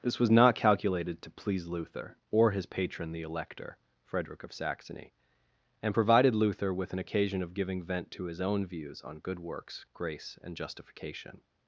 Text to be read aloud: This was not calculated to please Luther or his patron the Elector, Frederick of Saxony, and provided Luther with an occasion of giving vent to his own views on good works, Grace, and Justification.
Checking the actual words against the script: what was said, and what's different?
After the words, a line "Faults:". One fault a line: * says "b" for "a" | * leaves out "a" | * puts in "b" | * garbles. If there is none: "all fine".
This was not calculated to please Luther or his patron the Elector, Frederick of Saxony, and provided Luther with an occasion of giving vent to his own views on good works, Grace, and Justification.
Faults:
all fine